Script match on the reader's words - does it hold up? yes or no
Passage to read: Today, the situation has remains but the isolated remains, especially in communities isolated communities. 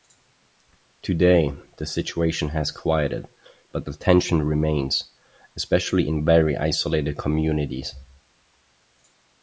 no